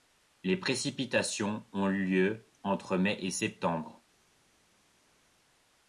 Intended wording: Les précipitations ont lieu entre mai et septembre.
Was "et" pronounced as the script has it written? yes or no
yes